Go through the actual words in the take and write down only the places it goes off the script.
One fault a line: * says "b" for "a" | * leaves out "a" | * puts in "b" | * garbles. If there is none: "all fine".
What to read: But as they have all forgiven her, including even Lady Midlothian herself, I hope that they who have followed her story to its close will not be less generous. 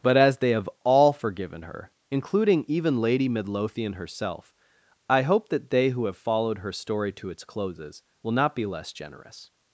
* says "closes" for "close"